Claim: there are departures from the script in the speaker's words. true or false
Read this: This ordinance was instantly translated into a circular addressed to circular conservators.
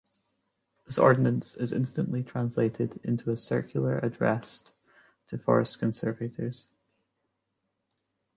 true